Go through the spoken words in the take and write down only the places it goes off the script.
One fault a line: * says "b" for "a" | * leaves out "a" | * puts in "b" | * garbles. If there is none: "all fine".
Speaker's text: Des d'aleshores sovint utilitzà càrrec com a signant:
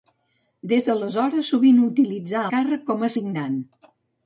all fine